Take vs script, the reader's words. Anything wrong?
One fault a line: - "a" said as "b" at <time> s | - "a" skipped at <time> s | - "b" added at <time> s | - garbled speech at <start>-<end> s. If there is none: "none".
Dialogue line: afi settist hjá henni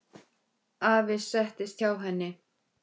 none